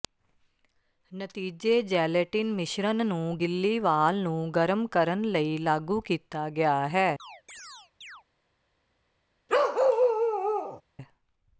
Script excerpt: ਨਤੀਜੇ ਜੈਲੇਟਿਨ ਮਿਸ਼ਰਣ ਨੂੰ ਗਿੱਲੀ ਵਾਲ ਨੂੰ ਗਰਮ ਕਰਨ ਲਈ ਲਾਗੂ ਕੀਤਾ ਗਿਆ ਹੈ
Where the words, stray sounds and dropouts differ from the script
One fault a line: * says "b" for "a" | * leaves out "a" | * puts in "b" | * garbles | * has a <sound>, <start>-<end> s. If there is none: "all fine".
* has a chirp, 7.2-8.2 s
* has a bark, 9.5-10.8 s